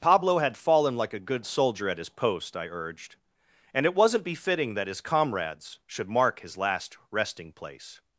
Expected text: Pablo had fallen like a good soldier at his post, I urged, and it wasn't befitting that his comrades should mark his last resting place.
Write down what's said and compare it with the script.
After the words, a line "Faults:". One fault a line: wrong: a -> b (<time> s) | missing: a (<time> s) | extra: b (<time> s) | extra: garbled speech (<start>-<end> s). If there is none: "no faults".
Pablo had fallen like a good soldier at his post, I urged, and it wasn't befitting that his comrades should mark his last resting place.
Faults:
no faults